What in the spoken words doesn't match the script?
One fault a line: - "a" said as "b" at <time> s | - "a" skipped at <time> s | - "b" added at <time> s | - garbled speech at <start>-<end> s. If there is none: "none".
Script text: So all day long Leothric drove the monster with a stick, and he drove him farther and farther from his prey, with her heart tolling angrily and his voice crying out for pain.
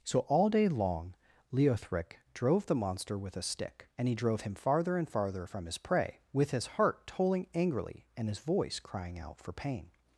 - "her" said as "his" at 6.5 s